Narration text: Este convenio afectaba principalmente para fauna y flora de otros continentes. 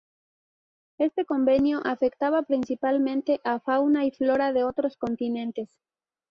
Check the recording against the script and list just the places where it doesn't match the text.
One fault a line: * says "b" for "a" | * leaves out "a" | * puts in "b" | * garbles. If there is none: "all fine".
* says "a" for "para"